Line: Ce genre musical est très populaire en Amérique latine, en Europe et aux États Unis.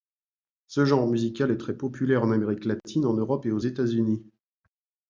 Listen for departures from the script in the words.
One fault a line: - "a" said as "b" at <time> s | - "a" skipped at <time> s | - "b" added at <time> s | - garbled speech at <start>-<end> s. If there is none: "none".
none